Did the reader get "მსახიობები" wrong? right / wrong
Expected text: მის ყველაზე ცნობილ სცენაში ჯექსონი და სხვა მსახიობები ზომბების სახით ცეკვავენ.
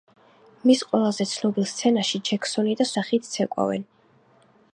wrong